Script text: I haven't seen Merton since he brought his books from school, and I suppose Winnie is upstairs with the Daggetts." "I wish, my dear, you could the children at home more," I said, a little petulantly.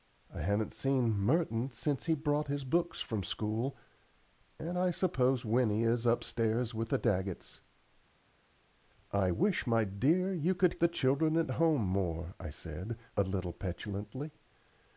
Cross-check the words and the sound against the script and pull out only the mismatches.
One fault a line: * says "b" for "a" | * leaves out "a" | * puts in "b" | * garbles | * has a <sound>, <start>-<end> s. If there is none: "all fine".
all fine